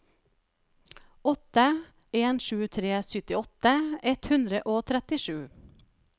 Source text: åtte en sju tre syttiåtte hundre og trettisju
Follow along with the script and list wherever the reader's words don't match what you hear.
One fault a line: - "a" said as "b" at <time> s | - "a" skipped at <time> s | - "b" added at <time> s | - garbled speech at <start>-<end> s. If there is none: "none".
- "ett" added at 4.0 s